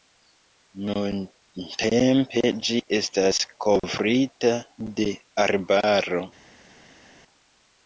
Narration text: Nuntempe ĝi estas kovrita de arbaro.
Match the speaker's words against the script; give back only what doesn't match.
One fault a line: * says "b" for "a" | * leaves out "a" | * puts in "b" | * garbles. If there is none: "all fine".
all fine